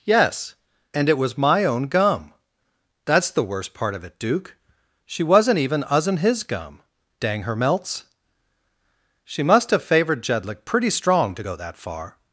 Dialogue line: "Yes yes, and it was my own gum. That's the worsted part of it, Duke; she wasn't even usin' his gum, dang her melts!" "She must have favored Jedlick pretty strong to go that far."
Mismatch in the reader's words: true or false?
true